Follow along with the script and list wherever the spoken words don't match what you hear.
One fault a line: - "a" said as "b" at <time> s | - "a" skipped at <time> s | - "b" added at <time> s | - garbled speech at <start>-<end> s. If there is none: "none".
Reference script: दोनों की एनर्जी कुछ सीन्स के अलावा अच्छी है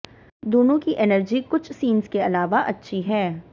none